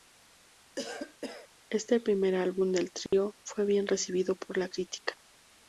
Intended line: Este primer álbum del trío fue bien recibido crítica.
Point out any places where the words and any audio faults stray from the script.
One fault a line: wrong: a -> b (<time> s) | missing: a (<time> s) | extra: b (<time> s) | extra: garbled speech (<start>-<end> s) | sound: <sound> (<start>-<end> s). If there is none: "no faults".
sound: cough (0.8-1.5 s)
sound: dropout (3.1-3.1 s)
extra: por la (4.3 s)